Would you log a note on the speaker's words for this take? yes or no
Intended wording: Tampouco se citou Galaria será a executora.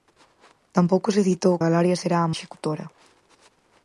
no